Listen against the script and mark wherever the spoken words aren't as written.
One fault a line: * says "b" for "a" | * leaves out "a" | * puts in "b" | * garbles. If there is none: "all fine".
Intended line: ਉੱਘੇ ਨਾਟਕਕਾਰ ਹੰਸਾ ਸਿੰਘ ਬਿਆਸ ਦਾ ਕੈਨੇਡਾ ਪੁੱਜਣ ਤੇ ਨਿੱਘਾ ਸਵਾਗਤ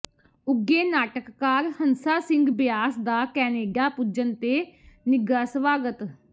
all fine